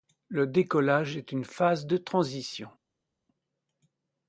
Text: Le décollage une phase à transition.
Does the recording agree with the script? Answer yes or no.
no